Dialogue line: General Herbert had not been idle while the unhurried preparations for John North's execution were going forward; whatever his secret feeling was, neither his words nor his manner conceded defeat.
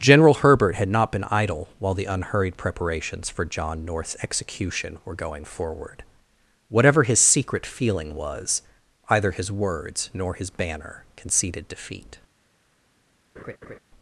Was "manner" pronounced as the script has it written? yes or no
no